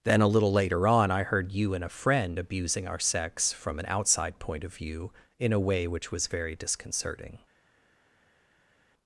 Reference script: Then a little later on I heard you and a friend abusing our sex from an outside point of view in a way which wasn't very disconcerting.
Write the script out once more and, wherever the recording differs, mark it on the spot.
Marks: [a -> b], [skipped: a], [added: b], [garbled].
Then a little later on I heard you and a friend abusing our sex from an outside point of view in a way which [wasn't -> was] very disconcerting.